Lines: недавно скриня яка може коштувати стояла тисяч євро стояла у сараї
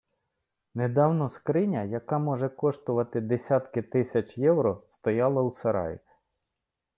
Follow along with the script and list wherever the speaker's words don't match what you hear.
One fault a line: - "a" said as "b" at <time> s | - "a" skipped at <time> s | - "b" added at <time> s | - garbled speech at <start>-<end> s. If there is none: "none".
- "стояла" said as "десятки" at 3.2 s